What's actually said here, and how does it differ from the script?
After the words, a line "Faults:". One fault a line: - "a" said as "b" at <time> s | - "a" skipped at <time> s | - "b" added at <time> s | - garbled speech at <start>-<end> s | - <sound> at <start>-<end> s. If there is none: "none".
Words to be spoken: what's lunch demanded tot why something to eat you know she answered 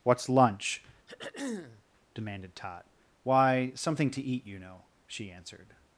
what's lunch demanded tot why something to eat you know she answered
Faults:
- throat clearing at 1.1-1.8 s